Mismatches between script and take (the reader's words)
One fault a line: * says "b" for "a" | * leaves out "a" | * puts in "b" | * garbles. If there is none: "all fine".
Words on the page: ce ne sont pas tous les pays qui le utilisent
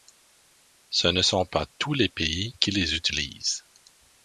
* says "les" for "le"